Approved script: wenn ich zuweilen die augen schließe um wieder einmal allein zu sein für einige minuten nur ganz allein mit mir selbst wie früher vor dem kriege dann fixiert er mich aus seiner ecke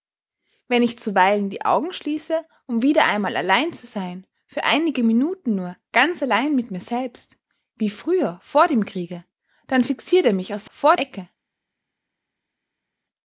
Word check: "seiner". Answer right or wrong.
wrong